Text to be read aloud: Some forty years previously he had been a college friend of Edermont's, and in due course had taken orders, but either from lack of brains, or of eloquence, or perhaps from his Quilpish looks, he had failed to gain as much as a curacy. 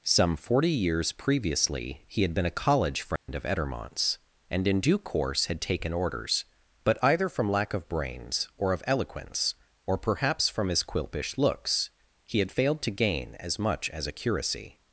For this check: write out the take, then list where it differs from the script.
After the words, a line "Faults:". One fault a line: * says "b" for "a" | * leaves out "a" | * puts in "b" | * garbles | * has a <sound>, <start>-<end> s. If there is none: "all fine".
Some forty years previously he had been a college friend of Edermont's, and in due course had taken orders, but either from lack of brains, or of eloquence, or perhaps from his Quilpish looks, he had failed to gain as much as a curacy.
Faults:
* has a dropout, 3.2-3.3 s